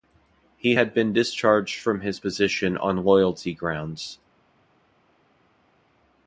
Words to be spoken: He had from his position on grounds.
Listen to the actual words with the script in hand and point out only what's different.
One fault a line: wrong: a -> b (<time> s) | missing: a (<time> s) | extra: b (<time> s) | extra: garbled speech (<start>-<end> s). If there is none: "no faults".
extra: been discharged (0.9 s)
extra: loyalty (3.0 s)